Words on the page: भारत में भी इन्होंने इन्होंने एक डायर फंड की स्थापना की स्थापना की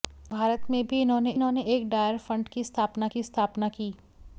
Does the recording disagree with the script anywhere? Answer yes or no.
no